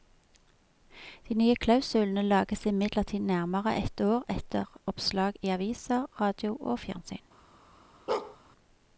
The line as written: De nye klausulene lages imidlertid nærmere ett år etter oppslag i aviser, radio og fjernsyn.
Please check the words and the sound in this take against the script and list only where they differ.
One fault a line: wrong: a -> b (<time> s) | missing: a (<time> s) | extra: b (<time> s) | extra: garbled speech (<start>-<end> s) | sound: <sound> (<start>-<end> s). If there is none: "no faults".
sound: bark (8.1-8.4 s)